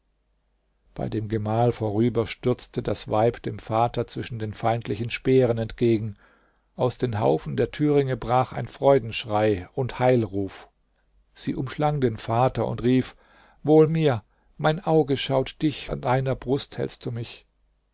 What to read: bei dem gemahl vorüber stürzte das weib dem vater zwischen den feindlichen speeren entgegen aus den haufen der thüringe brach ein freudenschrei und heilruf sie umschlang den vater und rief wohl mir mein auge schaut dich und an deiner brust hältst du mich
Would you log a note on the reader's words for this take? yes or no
yes